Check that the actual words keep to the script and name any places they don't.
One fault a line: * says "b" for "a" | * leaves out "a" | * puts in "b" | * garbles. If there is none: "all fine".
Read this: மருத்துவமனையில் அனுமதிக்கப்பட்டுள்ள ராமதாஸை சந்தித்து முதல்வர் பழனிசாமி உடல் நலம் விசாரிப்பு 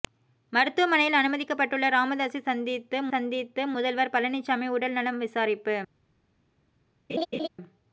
* puts in "சந்தித்து"